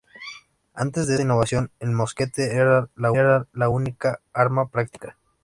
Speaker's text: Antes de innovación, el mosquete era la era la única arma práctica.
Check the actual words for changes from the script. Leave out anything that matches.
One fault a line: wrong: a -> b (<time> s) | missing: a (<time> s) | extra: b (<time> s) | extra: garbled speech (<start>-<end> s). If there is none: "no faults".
no faults